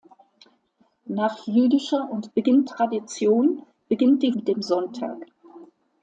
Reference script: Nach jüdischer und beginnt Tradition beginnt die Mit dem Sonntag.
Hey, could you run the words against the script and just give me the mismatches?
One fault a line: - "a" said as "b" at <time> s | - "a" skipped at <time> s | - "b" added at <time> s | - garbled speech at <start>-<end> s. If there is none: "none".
none